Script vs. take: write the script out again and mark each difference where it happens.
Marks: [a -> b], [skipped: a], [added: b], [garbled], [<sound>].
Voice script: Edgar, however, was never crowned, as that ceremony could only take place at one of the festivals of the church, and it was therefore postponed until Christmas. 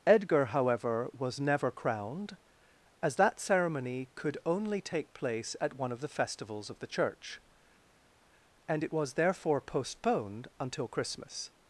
Edgar, however, was never crowned, as that ceremony could only take place at one of the festivals of the church, and it was therefore postponed until Christmas.